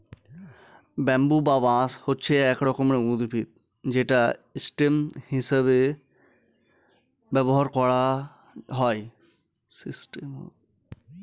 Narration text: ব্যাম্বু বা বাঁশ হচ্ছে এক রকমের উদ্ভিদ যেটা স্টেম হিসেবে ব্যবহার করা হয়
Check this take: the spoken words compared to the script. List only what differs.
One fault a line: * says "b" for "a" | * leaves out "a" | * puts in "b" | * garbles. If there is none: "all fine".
all fine